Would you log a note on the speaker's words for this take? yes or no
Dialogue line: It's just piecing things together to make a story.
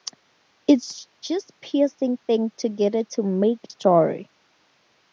yes